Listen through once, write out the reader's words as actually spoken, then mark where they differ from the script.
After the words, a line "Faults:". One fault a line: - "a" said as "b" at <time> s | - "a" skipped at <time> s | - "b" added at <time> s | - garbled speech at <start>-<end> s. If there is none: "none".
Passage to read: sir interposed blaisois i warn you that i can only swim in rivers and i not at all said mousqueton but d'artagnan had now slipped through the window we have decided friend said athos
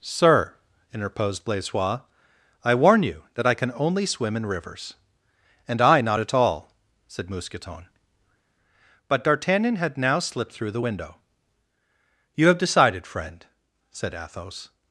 sir interposed blaisois i warn you that i can only swim in rivers and i not at all said mousqueton but d'artagnan had now slipped through the window you have decided friend said athos
Faults:
- "we" said as "you" at 12.3 s